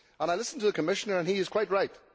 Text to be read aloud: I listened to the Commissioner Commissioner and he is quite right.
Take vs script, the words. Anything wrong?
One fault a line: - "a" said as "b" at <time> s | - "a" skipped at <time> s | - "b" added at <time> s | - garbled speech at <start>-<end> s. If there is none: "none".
- "Commissioner" skipped at 1.2 s